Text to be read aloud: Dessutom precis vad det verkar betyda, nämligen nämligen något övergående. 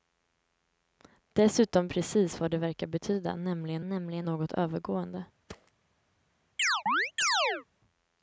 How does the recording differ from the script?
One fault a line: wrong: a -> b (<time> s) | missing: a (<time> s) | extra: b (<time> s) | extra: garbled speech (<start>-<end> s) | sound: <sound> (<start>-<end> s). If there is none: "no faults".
sound: thud (5.5-5.7 s)
sound: chirp (6.6-7.7 s)